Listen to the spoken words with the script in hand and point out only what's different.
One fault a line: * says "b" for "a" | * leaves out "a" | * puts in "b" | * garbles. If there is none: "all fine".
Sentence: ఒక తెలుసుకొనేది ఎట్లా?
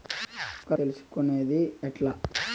all fine